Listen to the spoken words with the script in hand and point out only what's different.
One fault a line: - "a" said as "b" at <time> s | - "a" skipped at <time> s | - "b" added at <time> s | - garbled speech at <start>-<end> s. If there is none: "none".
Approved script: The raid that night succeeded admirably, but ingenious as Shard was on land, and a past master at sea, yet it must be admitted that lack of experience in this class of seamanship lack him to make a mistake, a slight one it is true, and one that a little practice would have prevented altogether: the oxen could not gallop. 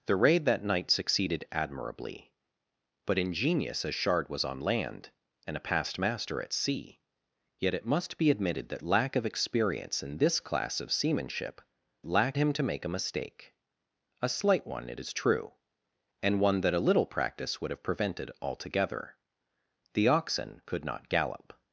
none